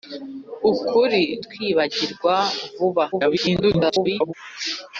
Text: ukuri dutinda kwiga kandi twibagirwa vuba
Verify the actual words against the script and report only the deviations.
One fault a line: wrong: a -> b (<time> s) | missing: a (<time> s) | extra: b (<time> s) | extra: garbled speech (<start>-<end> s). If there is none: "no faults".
missing: dutinda kwiga kandi (1.2 s)
extra: garbled speech (3.1-4.3 s)